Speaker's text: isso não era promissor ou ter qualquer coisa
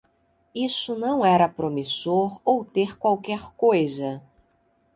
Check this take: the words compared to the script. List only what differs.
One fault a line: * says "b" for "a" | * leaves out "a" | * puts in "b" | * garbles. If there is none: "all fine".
all fine